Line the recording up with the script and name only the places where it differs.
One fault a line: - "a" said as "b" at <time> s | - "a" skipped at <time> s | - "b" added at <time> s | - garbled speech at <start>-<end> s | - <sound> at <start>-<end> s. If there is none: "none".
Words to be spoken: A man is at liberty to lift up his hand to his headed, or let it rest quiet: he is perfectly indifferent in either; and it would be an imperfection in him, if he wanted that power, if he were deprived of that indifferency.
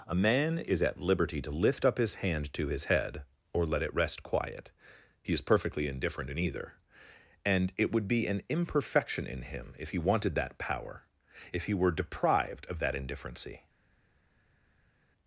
- "headed" said as "head" at 2.8 s